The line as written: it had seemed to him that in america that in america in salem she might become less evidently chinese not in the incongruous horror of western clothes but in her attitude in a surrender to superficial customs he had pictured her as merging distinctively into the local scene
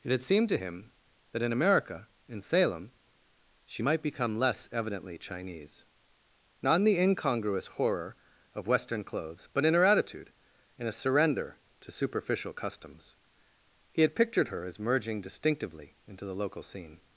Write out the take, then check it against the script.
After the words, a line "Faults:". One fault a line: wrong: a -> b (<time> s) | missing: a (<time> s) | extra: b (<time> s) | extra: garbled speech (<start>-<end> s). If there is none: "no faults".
it had seemed to him that in america in salem she might become less evidently chinese not in the incongruous horror of western clothes but in her attitude in a surrender to superficial customs he had pictured her as merging distinctively into the local scene
Faults:
missing: that in america (2.1 s)